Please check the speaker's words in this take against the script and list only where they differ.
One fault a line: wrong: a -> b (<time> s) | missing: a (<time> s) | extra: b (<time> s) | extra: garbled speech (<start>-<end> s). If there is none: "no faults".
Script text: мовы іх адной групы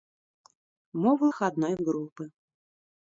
no faults